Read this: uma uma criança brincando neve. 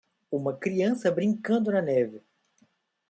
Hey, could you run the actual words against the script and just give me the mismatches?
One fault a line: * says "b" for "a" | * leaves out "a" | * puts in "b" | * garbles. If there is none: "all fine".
* leaves out "uma"
* puts in "na"